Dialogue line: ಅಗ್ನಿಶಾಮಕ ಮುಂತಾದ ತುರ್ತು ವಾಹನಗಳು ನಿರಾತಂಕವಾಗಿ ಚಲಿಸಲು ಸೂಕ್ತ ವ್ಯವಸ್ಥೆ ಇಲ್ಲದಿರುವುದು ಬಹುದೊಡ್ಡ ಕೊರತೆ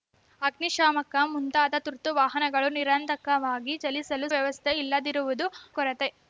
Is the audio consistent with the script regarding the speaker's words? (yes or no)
no